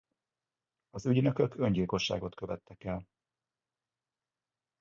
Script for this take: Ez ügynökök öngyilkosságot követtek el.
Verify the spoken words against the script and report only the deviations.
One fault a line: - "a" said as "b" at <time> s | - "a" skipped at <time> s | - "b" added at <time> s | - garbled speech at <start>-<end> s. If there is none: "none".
- "Ez" said as "Az" at 0.9 s